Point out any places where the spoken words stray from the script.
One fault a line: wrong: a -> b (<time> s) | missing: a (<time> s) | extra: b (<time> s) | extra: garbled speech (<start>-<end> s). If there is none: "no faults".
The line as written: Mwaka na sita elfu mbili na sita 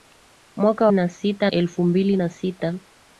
no faults